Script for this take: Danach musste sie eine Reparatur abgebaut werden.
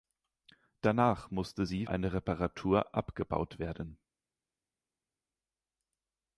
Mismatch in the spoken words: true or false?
false